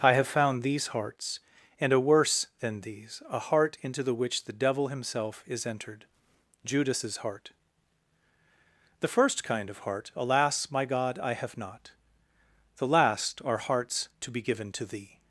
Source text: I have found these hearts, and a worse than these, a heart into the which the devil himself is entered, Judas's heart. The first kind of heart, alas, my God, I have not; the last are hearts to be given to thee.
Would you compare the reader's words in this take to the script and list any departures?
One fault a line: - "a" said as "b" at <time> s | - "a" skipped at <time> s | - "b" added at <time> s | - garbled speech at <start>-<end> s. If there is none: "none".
none